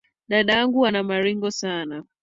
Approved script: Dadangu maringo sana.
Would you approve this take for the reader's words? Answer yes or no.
no